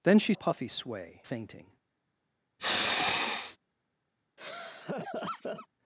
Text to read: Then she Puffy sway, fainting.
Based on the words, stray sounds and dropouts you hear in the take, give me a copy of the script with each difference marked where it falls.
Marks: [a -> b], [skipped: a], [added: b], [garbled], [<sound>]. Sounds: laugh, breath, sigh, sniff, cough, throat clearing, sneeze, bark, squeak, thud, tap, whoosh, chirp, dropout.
Then she Puffy sway, fainting. [sniff] [laugh]